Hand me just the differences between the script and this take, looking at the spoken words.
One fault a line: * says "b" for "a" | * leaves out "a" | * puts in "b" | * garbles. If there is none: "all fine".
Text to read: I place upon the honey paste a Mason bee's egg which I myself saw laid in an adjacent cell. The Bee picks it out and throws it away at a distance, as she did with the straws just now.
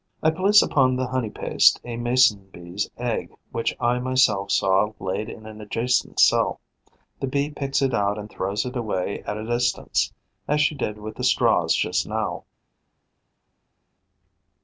all fine